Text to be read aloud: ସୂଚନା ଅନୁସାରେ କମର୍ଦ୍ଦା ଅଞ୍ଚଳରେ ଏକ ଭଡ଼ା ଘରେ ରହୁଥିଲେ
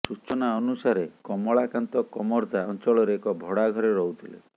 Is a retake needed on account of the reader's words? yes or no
yes